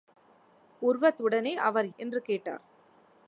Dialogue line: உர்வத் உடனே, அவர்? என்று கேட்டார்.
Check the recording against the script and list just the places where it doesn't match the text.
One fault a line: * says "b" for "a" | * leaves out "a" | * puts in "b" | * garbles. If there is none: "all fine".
all fine